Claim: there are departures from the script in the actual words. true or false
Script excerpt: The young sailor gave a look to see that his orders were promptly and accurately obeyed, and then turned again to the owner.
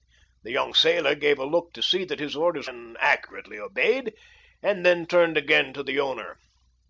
true